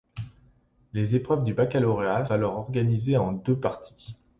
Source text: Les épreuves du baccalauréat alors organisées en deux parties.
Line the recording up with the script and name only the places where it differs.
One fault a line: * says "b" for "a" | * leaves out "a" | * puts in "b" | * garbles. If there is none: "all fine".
all fine